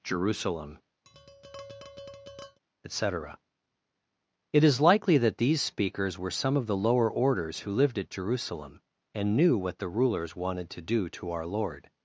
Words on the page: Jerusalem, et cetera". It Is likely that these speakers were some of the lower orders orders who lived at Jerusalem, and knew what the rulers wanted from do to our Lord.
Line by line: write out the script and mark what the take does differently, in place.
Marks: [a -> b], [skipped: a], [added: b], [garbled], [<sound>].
Jerusalem, [tap] et cetera". It Is likely that these speakers were some of the lower orders [skipped: orders] who lived at Jerusalem, and knew what the rulers wanted [from -> to] do to our Lord.